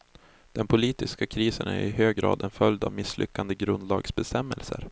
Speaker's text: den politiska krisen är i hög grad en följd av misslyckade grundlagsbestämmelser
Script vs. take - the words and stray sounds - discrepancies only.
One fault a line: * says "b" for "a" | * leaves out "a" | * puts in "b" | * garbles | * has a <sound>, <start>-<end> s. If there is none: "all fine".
all fine